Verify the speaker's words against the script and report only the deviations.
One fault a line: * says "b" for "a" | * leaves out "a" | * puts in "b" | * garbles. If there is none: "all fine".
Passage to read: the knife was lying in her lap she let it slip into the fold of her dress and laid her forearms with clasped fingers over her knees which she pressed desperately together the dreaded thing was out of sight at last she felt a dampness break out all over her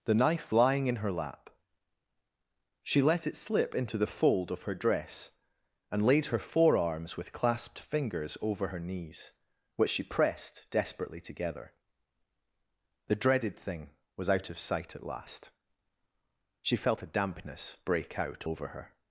* leaves out "was"
* leaves out "all"